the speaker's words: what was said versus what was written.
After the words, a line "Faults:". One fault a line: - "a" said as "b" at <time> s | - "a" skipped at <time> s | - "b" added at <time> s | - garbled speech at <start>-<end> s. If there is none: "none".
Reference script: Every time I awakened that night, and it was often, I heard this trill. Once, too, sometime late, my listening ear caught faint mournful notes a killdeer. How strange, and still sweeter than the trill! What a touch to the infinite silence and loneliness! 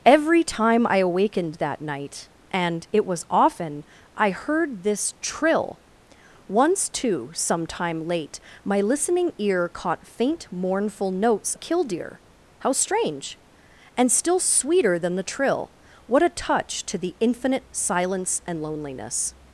Every time I awakened that night, and it was often, I heard this trill. Once, too, sometime late, my listening ear caught faint mournful notes a killdeer. How strange, and still sweeter than the trill! What a touch to the infinite silence and loneliness!
Faults:
none